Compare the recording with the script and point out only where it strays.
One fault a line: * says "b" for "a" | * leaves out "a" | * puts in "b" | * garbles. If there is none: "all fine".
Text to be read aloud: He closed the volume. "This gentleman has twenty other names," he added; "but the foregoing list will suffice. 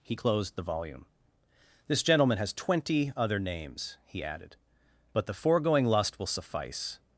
* says "lust" for "list"